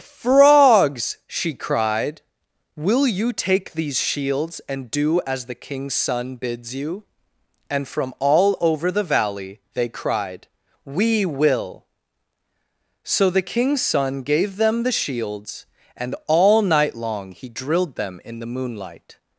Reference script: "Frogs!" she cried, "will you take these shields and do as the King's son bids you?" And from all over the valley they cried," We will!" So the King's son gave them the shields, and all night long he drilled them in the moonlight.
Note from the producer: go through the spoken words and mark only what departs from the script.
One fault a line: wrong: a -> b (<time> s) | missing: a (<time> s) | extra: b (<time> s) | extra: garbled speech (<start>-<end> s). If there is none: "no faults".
no faults